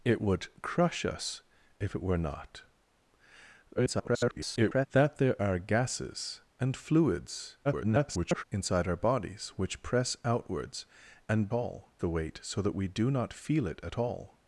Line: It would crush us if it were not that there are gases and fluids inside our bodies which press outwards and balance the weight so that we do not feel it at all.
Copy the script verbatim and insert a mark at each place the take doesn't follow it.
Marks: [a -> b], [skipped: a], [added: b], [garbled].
It would crush us if it were not [garbled] that there are gases and fluids [garbled] inside our bodies which press outwards and [balance -> all] the weight so that we do not feel it at all.